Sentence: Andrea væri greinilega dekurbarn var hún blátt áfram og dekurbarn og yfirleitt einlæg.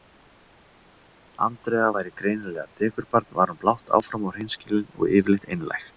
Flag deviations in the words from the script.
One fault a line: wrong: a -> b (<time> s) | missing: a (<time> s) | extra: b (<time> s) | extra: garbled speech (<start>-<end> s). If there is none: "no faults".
wrong: dekurbarn -> hreinskilin (4.4 s)